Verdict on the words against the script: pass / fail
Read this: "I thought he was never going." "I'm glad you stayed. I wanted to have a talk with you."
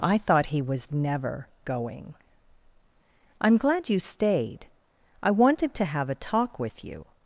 pass